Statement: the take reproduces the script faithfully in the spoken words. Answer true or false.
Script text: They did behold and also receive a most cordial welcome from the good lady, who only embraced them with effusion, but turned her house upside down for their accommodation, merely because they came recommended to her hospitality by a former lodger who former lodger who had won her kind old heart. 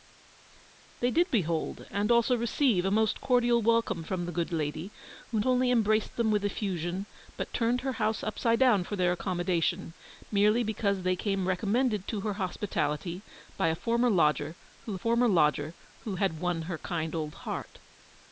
true